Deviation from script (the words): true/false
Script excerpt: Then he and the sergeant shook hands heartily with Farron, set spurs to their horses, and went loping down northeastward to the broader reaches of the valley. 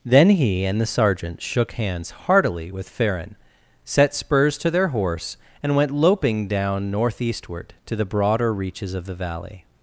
true